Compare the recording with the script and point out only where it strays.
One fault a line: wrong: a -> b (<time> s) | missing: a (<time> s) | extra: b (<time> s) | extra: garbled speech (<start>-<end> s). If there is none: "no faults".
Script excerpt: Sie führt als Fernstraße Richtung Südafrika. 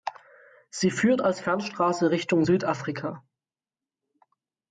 no faults